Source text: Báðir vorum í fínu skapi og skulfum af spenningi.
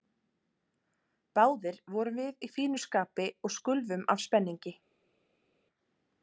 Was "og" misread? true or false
false